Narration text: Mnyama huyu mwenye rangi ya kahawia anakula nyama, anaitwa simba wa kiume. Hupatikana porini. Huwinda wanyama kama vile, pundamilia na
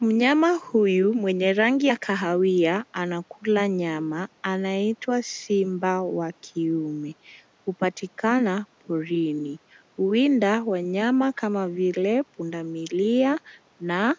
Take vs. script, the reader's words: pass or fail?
pass